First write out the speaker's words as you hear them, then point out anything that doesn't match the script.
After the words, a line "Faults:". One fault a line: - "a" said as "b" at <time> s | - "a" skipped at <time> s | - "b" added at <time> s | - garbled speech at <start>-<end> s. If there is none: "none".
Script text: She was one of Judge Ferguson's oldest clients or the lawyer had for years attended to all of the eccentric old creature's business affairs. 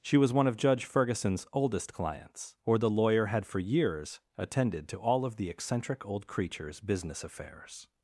She was one of Judge Ferguson's oldest clients or the lawyer had for years attended to all of the eccentric old creature's business affairs.
Faults:
none